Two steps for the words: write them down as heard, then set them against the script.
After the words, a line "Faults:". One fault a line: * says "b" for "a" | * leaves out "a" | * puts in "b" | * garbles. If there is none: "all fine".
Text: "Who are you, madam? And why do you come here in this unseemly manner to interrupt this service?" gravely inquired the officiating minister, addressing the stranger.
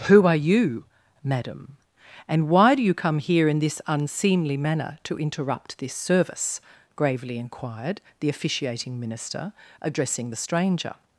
"Who are you, madam? And why do you come here in this unseemly manner to interrupt this service?" gravely inquired the officiating minister, addressing the stranger.
Faults:
all fine